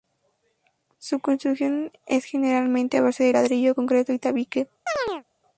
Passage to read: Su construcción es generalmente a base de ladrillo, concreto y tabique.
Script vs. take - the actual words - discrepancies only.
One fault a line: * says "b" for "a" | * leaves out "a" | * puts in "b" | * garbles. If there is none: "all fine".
all fine